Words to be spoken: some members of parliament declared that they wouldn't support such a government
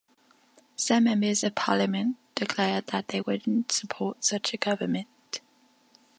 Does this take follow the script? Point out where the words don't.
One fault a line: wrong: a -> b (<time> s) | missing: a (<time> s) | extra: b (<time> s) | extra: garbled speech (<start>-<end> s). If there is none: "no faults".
no faults